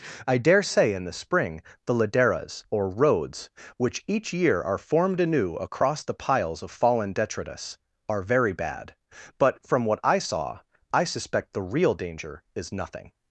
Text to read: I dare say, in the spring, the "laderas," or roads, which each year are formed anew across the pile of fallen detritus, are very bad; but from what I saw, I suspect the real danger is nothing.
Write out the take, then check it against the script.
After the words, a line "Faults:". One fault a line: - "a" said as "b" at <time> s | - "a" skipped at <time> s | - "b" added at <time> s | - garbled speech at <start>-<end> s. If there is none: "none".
I dare say, in the spring, the "laderas," or roads, which each year are formed anew across the piles of fallen detritus, are very bad; but from what I saw, I suspect the real danger is nothing.
Faults:
- "pile" said as "piles" at 6.2 s